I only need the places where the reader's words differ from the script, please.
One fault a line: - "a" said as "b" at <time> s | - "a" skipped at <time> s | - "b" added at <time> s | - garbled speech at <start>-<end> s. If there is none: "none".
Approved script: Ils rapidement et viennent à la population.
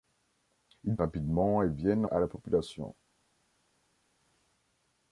none